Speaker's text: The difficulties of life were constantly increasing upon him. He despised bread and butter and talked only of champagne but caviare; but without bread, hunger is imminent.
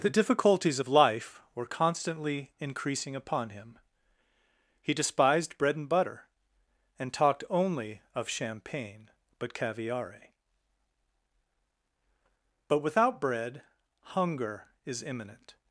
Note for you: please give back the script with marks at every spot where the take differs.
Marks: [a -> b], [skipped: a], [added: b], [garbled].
The difficulties of life were constantly increasing upon him. He despised bread and butter and talked only of champagne but caviare; but without bread, hunger is imminent.